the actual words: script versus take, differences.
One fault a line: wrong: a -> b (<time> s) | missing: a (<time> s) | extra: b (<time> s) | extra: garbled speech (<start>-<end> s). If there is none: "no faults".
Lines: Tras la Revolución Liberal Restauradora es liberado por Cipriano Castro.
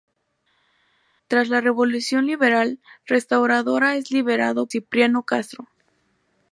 missing: por (4.7 s)